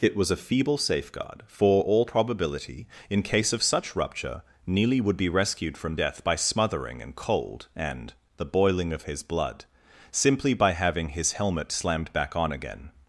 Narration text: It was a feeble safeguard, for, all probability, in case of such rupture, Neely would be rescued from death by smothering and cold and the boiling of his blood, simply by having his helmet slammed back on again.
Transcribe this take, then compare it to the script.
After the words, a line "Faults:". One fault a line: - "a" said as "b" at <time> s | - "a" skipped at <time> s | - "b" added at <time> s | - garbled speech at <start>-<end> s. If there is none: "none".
It was a feeble safeguard, for, all probability, in case of such rupture, Neely would be rescued from death by smothering and cold and the boiling of his blood, simply by having his helmet slammed back on again.
Faults:
none